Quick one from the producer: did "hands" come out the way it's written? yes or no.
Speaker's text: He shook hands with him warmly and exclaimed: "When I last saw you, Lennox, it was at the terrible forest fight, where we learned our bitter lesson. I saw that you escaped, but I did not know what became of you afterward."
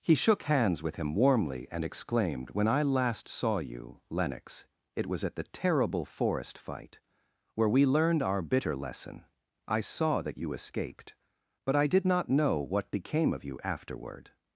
yes